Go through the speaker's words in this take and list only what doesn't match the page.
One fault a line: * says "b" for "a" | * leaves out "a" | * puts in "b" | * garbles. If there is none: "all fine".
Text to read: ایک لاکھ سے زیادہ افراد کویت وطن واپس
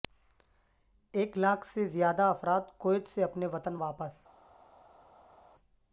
* puts in "سے اپنے"